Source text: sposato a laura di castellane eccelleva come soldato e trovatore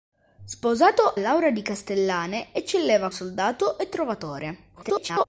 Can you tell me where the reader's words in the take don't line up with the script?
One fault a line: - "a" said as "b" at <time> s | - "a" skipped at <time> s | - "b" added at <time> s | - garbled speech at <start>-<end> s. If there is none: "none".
- "a" skipped at 1.1 s
- "come" skipped at 3.1 s
- garbled speech at 4.8-5.2 s